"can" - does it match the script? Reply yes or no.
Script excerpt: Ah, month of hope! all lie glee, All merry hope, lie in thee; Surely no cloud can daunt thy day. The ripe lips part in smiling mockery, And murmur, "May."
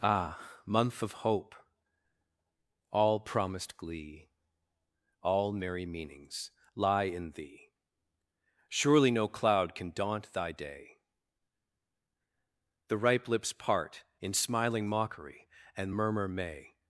yes